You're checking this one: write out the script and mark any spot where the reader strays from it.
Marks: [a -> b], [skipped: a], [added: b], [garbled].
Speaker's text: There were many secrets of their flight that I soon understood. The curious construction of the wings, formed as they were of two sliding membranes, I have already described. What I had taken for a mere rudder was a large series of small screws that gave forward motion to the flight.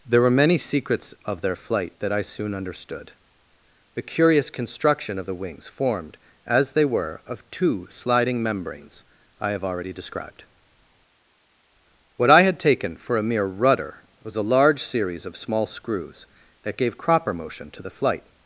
There were many secrets of their flight that I soon understood. The curious construction of the wings, formed as they were of two sliding membranes, I have already described. What I had taken for a mere rudder was a large series of small screws that gave [forward -> cropper] motion to the flight.